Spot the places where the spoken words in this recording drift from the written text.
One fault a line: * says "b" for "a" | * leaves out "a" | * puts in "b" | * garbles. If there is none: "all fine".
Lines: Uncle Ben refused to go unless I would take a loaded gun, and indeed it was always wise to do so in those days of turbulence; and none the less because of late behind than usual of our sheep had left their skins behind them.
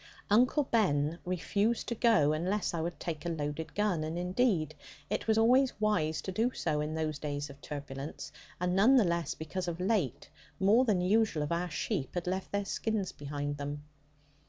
* says "more" for "behind"